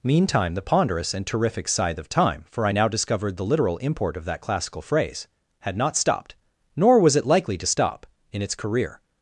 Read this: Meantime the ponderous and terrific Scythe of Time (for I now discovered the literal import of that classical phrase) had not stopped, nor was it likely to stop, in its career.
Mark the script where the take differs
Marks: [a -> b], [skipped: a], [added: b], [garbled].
Meantime the ponderous and terrific Scythe of Time (for I now discovered the literal import of that classical phrase) had not stopped, nor was it likely to stop, in its career.